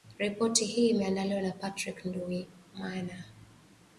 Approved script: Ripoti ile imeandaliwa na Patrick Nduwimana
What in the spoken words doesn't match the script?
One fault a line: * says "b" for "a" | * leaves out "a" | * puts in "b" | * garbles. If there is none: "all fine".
* says "hii" for "ile"